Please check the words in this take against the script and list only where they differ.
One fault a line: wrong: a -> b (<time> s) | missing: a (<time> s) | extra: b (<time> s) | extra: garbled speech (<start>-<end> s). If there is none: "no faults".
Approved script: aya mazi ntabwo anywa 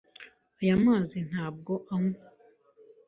no faults